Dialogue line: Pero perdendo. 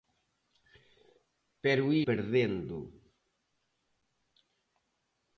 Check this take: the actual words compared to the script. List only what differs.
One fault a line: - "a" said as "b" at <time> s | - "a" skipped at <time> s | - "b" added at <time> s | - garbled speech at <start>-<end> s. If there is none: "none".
none